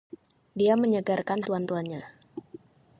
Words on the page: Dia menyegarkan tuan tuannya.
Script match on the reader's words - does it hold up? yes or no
yes